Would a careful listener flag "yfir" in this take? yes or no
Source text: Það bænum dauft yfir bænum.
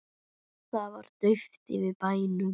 no